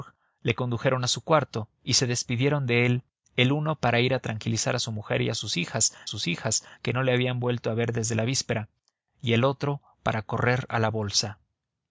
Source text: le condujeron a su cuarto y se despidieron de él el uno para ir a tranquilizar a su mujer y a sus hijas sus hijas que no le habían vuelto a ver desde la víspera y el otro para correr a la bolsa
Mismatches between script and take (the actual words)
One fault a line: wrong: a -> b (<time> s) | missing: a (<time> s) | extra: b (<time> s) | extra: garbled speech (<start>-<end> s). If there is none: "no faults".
no faults